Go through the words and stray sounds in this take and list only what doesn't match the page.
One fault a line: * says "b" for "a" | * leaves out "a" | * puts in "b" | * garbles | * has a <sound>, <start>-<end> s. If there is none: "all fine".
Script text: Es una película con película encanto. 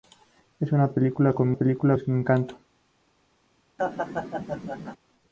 * has a laugh, 3.8-5.0 s